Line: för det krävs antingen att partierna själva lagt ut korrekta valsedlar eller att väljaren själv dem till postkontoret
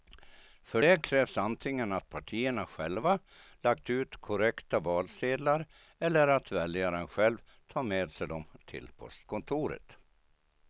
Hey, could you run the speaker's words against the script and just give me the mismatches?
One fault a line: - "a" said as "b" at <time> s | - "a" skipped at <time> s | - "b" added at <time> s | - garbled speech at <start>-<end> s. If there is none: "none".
- "tar med sig" added at 7.7 s